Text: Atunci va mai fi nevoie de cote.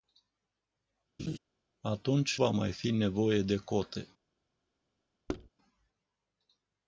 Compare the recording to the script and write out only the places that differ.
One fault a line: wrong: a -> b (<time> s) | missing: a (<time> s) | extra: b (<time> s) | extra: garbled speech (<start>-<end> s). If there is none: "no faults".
no faults